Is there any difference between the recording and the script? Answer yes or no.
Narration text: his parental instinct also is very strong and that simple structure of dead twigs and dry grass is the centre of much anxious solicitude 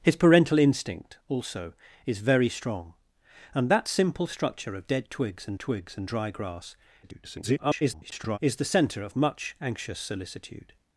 yes